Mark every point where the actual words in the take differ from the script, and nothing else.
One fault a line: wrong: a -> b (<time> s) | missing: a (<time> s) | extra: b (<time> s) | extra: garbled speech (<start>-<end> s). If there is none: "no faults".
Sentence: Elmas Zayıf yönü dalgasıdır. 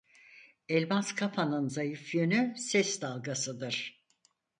extra: Kafa'nın (1.1 s)
extra: ses (2.6 s)